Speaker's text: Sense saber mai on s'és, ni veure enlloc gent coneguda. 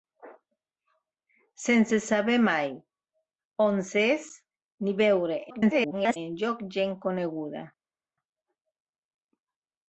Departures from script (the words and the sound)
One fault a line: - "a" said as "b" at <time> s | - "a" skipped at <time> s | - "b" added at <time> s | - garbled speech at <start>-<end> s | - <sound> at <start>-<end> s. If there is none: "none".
- garbled speech at 5.5-6.2 s